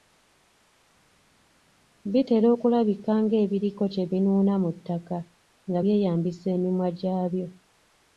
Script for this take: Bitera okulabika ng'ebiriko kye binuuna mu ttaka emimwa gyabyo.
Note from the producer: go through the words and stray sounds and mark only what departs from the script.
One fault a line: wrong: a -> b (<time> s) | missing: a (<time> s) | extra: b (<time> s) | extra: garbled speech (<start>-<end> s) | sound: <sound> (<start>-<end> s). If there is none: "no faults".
extra: nga byeyambisa (5.7 s)